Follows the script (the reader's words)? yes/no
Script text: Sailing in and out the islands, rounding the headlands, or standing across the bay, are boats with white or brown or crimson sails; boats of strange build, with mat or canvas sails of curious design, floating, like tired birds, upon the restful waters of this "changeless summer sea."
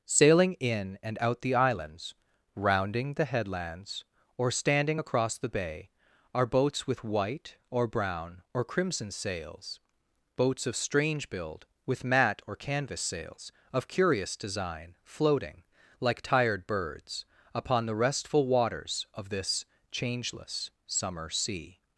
yes